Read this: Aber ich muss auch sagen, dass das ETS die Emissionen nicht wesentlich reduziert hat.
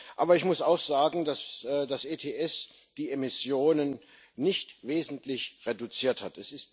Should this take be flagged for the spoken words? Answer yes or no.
no